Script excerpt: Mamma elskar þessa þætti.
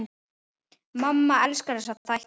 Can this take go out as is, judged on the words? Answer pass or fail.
pass